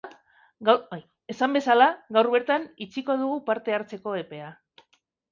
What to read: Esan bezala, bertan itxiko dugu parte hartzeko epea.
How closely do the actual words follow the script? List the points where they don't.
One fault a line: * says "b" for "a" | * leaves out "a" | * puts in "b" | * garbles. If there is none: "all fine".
* puts in "gaur"